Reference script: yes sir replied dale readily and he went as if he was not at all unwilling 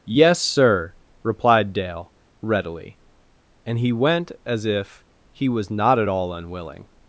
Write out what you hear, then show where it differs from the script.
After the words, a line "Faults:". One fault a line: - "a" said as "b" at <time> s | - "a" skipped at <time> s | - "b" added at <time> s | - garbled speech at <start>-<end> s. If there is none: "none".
yes sir replied dale readily and he went as if he was not at all unwilling
Faults:
none